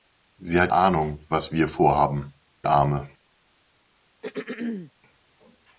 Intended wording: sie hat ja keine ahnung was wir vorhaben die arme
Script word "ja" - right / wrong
wrong